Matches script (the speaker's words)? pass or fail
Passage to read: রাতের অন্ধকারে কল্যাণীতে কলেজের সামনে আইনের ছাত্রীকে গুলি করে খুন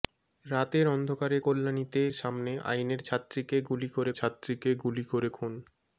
fail